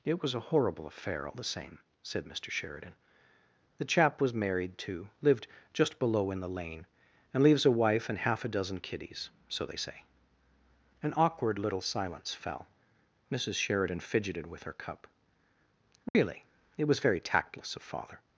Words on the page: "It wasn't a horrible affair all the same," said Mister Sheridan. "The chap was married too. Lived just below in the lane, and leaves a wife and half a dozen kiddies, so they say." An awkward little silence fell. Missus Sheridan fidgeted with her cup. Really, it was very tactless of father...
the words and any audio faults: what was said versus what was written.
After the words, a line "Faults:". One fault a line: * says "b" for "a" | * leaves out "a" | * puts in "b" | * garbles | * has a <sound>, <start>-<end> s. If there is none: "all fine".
"It was a horrible affair all the same," said Mister Sheridan. "The chap was married too. Lived just below in the lane, and leaves a wife and half a dozen kiddies, so they say." An awkward little silence fell. Missus Sheridan fidgeted with her cup. Really, it was very tactless of father...
Faults:
* says "was" for "wasn't"
* has a dropout, 16.1-16.1 s